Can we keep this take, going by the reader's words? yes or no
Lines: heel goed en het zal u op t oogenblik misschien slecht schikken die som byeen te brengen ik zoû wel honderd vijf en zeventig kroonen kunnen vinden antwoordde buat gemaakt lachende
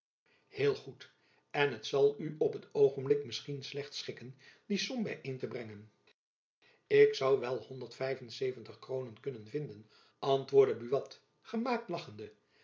yes